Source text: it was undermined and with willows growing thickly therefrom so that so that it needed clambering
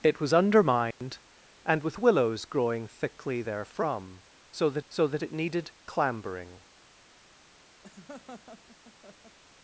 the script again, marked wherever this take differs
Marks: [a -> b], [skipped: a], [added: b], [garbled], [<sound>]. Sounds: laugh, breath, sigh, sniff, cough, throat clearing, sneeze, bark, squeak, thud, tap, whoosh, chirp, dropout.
it was undermined [dropout] and with willows growing thickly therefrom so that so that it needed clambering [laugh]